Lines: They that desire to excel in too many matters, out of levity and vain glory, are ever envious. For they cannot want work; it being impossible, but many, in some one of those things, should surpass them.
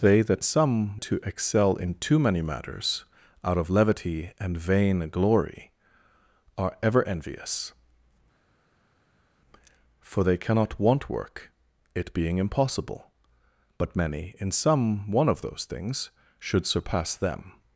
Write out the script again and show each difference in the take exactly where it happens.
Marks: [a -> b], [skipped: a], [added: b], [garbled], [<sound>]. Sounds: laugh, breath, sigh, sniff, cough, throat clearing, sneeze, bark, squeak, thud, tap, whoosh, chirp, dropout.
They that [desire -> some] to excel in too many matters, out of levity and vain glory, are ever envious. For they cannot want work; it being impossible, but many, in some one of those things, should surpass them.